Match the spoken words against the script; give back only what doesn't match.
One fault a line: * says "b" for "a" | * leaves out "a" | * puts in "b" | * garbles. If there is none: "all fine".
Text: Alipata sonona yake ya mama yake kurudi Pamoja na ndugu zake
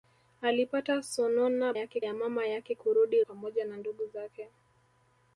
all fine